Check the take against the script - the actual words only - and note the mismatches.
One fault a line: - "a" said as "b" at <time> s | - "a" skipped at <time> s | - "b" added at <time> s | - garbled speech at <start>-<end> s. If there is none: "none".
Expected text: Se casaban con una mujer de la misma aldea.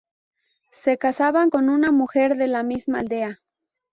none